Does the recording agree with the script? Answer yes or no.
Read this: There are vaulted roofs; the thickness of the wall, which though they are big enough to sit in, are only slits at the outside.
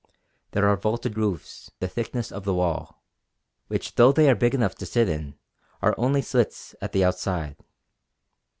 yes